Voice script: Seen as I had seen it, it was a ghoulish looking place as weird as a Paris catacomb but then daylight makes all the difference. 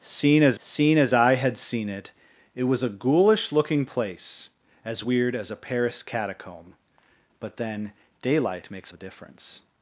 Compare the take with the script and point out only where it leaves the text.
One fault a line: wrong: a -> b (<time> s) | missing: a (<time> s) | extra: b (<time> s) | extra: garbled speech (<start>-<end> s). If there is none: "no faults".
extra: seen as (0.6 s)
missing: all (8.9 s)